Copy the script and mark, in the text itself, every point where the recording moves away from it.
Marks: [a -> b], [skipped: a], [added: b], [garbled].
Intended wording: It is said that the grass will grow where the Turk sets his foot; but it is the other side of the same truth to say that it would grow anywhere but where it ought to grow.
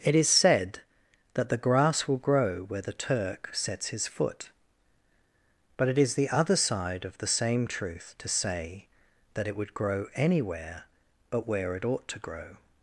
It is said that the grass will grow where the Turk sets his foot; but it is the other side of the same truth to say that it would grow anywhere but where it ought to grow.